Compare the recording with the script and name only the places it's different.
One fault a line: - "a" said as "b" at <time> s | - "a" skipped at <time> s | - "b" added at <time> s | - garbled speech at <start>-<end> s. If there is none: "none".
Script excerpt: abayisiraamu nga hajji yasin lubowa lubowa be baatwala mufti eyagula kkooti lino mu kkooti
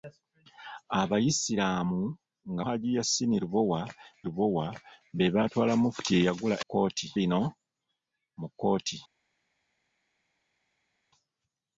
none